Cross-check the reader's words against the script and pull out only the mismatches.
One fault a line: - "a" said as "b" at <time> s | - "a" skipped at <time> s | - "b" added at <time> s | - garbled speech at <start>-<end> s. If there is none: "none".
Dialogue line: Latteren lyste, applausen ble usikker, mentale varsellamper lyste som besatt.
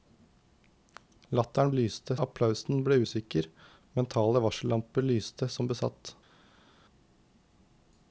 none